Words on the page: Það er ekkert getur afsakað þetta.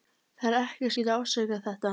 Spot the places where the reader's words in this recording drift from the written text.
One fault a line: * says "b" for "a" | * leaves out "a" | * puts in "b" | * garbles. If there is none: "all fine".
all fine